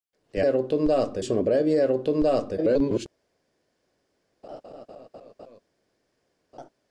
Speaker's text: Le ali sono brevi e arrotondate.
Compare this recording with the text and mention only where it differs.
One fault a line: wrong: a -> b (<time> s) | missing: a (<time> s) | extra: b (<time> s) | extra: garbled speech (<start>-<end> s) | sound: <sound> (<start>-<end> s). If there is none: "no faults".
wrong: ali -> arrotondate (0.4 s)
extra: garbled speech (2.6-3.1 s)
sound: laugh (4.4-5.6 s)
sound: laugh (6.5-6.7 s)